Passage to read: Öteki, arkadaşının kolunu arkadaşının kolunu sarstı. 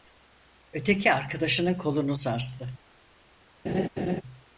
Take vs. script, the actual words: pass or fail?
fail